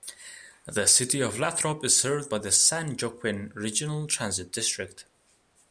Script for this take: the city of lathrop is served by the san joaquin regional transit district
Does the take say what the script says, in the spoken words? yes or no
yes